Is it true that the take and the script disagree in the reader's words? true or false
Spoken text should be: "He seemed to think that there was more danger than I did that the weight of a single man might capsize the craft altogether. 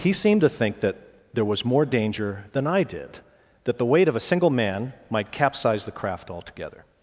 false